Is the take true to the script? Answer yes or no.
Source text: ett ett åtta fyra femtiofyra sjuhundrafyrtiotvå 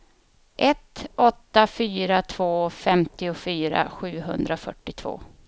no